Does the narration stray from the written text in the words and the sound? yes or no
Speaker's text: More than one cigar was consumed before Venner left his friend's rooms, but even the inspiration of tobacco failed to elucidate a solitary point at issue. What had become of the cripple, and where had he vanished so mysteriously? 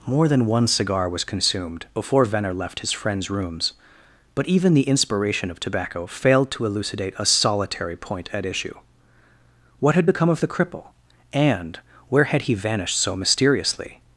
no